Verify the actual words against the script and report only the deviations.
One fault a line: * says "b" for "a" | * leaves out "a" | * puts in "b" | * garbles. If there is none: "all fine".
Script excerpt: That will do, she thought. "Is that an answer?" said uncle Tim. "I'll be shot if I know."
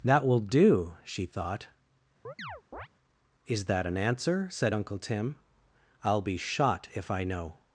all fine